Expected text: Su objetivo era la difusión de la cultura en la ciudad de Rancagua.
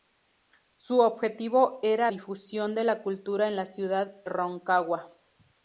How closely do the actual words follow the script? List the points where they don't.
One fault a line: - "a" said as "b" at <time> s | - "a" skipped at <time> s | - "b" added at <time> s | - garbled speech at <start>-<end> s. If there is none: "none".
- "la" skipped at 2.1 s
- "de" skipped at 4.2 s